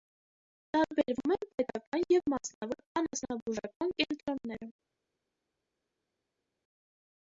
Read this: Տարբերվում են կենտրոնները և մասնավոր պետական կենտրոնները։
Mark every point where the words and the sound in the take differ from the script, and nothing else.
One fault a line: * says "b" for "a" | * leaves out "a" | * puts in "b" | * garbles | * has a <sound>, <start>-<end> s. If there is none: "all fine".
* says "պետական" for "կենտրոնները"
* says "անասնաբուժական" for "պետական"